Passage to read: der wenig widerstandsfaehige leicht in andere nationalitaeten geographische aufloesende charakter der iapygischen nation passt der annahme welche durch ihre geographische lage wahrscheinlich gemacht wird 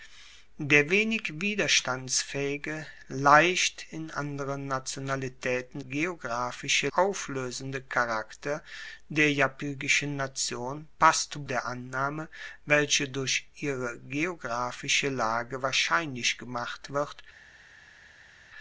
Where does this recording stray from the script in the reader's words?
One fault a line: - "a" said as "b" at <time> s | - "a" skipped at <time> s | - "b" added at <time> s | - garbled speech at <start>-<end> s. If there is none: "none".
none